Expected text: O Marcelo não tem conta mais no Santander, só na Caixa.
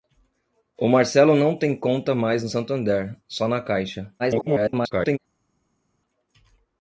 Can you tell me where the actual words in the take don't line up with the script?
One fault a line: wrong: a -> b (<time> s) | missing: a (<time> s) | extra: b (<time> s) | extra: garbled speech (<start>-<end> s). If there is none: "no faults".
extra: garbled speech (4.2-5.2 s)